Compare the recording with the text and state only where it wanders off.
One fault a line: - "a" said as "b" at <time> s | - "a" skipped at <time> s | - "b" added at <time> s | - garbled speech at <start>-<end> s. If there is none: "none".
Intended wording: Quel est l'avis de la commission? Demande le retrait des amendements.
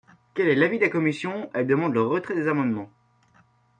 - "Elle" added at 1.5 s